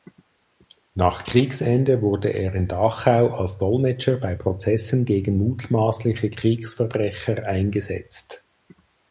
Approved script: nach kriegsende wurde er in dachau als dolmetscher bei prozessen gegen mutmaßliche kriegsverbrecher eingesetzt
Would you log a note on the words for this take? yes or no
no